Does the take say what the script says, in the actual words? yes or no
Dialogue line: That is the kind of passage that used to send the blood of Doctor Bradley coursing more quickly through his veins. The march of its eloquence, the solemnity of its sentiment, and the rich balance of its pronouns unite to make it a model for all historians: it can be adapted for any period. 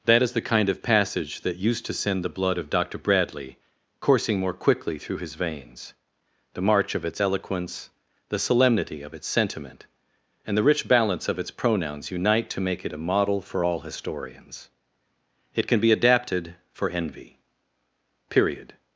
no